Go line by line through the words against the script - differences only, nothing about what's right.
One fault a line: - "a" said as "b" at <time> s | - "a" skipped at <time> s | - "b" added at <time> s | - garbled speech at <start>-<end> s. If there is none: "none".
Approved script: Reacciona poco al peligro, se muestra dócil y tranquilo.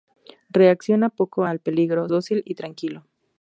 - "se muestra" skipped at 2.1 s